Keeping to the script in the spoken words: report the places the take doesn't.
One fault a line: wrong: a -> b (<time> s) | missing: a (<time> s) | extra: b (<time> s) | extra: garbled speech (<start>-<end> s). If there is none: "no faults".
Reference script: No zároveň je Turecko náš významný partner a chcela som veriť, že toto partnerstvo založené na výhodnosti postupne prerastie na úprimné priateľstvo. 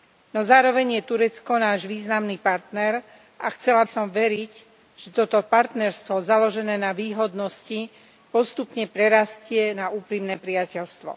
no faults